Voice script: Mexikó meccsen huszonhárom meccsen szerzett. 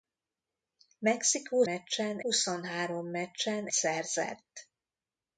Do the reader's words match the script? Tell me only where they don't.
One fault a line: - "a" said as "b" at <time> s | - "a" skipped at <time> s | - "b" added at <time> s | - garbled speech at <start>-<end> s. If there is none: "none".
none